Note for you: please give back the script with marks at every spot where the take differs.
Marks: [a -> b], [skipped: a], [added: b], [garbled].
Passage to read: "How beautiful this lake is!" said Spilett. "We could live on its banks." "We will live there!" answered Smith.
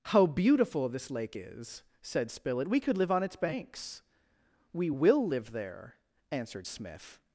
"How beautiful this lake is!" said Spilett. "We could live on its banks." "We will live there!" answered Smith.